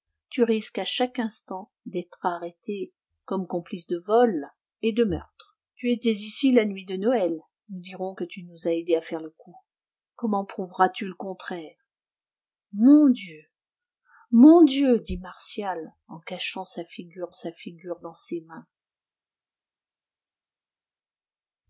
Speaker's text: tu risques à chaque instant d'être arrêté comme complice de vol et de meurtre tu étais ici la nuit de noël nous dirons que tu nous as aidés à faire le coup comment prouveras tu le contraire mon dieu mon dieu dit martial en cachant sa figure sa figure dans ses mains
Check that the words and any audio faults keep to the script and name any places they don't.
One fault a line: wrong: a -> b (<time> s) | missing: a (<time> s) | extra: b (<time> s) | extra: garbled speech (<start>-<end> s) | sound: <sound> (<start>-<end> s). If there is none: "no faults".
no faults